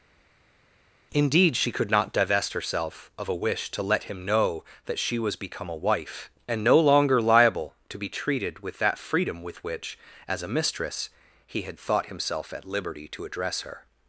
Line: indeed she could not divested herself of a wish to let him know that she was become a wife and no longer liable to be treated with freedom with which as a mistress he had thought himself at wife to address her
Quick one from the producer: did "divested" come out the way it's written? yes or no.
no